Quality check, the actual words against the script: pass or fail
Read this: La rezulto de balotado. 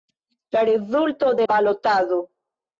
pass